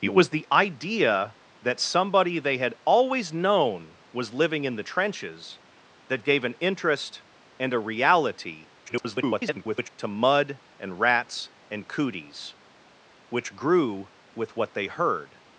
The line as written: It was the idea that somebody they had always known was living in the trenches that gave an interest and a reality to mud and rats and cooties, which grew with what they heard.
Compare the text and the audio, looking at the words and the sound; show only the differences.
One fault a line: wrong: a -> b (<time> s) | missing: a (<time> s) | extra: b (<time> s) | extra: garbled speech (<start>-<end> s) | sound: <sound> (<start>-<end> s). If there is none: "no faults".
extra: garbled speech (8.9-9.9 s)